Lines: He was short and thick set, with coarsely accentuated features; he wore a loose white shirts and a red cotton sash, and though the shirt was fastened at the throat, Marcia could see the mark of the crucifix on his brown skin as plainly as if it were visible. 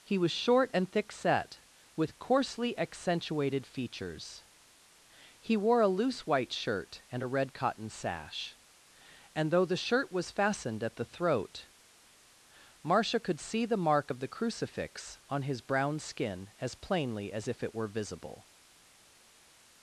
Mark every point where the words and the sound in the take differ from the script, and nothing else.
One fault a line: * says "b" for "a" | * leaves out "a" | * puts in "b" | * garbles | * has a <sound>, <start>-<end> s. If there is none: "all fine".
* says "shirt" for "shirts"